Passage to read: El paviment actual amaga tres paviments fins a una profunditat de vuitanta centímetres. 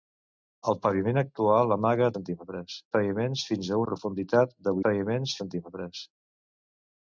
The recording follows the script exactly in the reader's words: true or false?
false